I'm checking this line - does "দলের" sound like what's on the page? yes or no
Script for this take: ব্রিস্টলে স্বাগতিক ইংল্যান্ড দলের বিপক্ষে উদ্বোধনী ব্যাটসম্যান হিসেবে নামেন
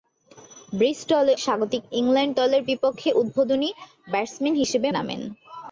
yes